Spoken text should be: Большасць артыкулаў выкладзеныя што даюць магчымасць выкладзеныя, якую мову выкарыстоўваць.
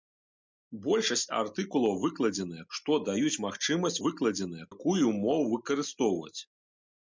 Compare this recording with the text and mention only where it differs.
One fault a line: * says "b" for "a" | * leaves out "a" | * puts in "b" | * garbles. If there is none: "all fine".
all fine